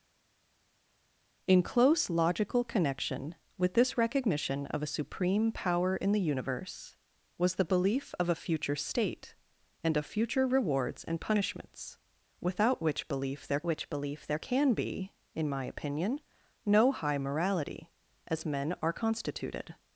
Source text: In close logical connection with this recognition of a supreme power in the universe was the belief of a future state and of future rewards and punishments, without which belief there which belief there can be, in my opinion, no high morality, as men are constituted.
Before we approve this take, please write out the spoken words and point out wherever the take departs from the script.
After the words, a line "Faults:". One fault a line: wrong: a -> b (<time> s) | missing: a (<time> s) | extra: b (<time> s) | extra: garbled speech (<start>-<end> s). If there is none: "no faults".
In close logical connection with this recognition of a supreme power in the universe was the belief of a future state and of future rewards and punishments, without which belief there which belief there can be, in my opinion, no high morality, as men are constituted.
Faults:
no faults